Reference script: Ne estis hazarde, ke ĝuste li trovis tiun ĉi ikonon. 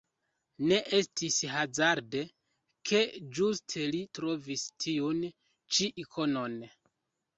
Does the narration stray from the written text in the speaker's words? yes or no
no